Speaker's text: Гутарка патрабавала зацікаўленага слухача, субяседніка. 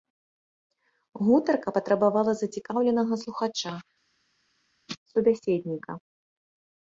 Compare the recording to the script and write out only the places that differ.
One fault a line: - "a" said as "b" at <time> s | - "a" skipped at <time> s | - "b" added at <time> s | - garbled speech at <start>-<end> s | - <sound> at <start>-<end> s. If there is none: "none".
none